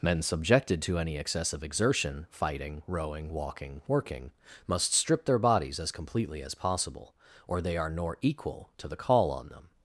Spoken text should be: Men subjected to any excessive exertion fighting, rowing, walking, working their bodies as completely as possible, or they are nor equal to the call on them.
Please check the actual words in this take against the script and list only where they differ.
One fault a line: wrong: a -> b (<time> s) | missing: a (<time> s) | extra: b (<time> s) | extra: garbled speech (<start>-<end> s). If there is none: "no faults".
extra: must strip (4.7 s)